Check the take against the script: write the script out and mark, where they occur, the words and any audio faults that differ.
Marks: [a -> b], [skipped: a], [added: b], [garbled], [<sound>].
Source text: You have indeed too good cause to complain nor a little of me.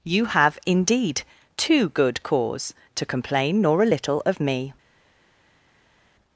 You have indeed too good cause to complain nor a little of me.